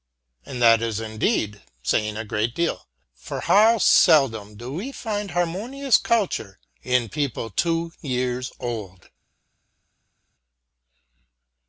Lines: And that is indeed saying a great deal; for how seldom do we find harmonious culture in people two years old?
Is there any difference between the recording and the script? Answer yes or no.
no